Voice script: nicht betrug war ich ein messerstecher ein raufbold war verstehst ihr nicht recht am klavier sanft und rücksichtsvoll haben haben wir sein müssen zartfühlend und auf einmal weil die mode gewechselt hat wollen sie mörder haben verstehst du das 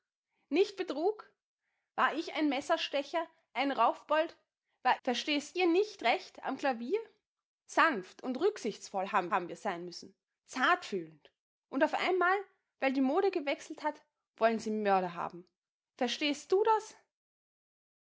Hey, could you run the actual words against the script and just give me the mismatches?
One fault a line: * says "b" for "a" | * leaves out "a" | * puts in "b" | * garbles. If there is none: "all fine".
all fine